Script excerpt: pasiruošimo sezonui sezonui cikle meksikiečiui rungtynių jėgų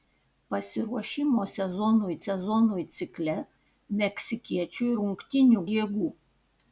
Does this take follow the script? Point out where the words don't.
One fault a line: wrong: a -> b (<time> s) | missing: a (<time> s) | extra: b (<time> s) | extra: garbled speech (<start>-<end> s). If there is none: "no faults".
no faults